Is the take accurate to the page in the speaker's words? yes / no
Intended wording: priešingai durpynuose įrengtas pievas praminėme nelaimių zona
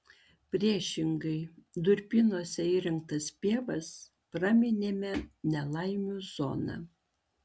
yes